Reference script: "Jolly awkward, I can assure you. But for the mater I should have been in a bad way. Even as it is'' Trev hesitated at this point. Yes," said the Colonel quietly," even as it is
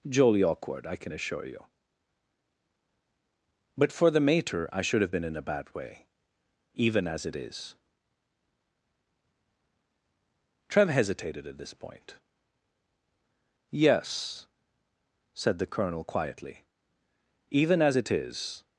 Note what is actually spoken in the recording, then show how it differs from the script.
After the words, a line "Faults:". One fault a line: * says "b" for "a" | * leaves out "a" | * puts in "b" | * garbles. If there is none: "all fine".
"Jolly awkward, I can assure you. But for the mater I should have been in a bad way. Even as it is'' Trev hesitated at this point. Yes," said the Colonel quietly," even as it is
Faults:
all fine